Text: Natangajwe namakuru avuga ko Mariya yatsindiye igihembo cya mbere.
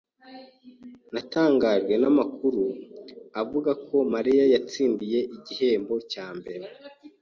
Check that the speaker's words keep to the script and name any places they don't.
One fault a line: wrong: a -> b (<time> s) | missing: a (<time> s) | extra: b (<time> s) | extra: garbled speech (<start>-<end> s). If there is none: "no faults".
no faults